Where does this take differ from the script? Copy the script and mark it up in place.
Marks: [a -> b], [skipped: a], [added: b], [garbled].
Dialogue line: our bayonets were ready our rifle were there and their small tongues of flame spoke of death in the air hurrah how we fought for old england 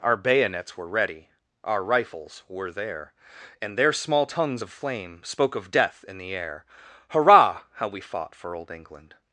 our bayonets were ready our [rifle -> rifles] were there and their small tongues of flame spoke of death in the air hurrah how we fought for old england